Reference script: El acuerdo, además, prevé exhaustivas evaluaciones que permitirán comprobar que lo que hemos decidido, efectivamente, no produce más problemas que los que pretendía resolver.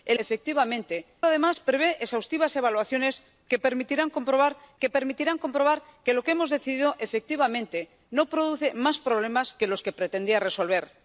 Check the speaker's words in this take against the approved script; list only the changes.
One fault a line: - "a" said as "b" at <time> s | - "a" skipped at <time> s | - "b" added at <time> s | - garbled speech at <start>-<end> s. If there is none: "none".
- "acuerdo" said as "efectivamente" at 0.2 s
- "permitirán comprobar que" added at 4.9 s